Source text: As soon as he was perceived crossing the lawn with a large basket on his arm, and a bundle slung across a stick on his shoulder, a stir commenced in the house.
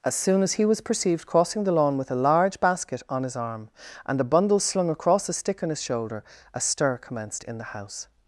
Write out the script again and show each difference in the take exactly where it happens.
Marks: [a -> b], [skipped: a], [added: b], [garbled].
As soon as he was perceived crossing the lawn with a large basket on his arm, and a bundle slung across a stick on his shoulder, a stir commenced in the house.